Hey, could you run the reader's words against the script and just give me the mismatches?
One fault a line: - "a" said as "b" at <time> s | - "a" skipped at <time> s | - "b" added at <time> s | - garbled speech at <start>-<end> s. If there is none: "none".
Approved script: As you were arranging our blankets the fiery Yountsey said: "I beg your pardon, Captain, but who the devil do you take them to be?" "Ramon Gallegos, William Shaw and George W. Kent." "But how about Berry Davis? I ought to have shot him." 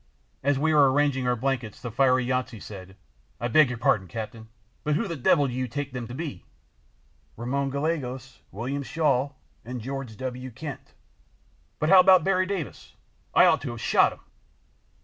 - "you" said as "we" at 0.6 s